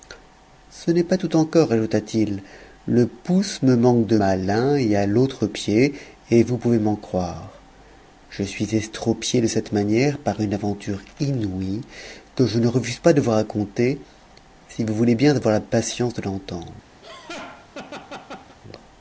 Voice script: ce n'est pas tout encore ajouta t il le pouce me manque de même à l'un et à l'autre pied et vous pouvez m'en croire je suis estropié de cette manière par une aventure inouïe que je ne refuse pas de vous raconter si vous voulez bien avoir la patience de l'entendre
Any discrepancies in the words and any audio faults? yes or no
yes